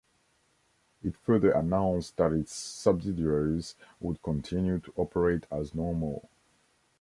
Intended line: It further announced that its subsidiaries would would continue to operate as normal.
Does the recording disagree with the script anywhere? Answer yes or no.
yes